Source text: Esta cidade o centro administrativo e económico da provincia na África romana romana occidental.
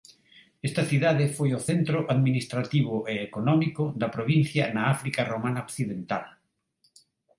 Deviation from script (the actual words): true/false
true